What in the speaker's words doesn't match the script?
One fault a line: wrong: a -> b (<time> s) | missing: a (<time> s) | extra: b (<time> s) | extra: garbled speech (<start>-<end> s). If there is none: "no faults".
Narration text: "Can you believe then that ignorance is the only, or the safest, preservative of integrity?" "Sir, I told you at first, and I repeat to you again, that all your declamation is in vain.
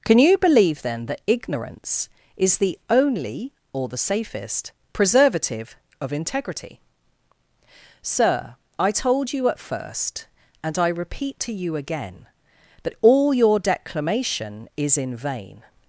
no faults